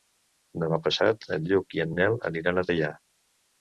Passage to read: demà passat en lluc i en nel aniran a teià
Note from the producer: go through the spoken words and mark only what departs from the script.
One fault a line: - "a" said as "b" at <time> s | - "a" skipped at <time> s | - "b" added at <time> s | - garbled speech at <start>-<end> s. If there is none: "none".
none